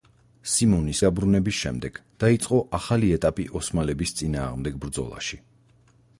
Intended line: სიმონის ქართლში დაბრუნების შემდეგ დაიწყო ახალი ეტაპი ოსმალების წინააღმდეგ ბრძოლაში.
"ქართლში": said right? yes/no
no